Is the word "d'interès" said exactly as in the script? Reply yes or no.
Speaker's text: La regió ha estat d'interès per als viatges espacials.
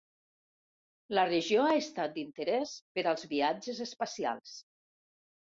yes